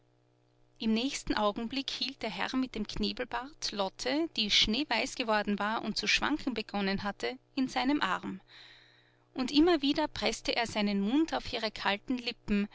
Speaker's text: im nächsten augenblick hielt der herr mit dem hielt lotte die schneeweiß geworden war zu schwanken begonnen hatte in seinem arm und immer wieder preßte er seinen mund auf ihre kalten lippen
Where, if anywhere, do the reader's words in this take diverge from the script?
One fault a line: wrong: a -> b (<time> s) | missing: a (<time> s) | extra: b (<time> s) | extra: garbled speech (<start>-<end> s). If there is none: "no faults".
wrong: hielt -> knebelbart (2.9 s)
extra: und (5.8 s)